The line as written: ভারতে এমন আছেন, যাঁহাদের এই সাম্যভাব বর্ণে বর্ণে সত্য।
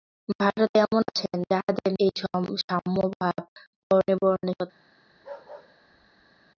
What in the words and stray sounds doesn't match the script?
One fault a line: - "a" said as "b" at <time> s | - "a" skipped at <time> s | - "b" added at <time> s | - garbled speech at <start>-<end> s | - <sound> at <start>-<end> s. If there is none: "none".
- bark at 5.1-6.5 s